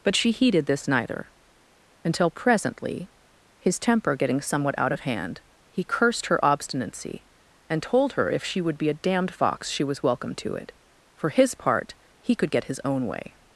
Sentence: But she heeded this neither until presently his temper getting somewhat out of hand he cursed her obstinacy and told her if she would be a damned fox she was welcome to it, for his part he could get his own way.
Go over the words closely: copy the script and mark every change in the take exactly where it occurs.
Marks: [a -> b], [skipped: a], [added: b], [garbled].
But she heeded this neither until presently his temper getting somewhat out of hand he cursed her obstinacy and told her if she would be a damned fox she was welcome to it, for his part he could get his own way.